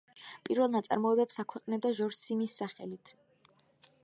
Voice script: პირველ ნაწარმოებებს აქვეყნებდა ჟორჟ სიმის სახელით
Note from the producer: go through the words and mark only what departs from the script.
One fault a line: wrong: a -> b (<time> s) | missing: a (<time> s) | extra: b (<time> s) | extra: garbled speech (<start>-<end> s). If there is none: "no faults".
no faults